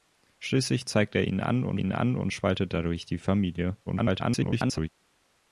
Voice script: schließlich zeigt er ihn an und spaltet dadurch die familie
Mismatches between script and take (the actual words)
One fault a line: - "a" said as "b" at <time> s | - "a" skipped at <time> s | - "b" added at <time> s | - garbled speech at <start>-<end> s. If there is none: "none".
- "ihn an und" added at 1.8 s
- garbled speech at 3.9-4.9 s